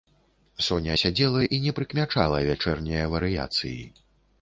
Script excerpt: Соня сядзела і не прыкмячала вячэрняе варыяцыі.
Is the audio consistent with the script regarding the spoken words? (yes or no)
yes